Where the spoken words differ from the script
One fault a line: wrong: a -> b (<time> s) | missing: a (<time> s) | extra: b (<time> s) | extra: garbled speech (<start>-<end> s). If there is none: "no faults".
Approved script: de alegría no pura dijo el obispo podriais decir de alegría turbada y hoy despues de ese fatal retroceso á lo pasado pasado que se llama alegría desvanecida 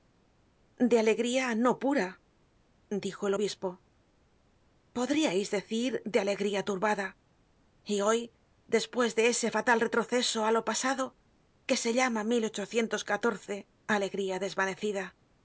missing: pasado (11.0 s)